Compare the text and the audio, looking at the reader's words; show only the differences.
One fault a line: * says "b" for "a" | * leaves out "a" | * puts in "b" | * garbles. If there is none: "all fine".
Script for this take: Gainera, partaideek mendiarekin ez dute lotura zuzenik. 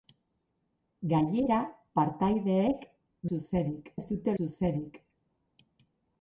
* says "zuzenik" for "mendiarekin"
* leaves out "lotura"